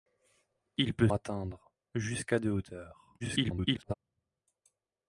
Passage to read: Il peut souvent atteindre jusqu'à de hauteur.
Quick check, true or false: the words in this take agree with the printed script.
false